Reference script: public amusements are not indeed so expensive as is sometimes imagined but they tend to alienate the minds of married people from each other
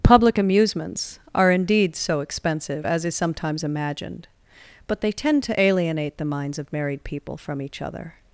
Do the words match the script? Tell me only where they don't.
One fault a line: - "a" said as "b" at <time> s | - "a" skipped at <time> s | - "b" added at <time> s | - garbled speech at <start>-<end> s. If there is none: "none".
- "not" skipped at 1.5 s